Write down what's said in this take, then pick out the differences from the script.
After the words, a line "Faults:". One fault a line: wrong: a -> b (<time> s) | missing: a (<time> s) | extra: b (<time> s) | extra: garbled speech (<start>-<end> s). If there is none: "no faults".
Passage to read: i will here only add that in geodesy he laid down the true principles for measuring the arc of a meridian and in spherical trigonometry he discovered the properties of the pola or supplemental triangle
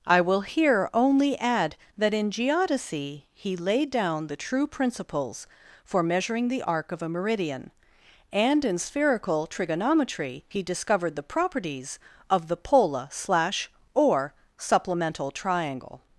i will here only add that in geodesy he laid down the true principles for measuring the arc of a meridian and in spherical trigonometry he discovered the properties of the pola slash or supplemental triangle
Faults:
extra: slash (13.1 s)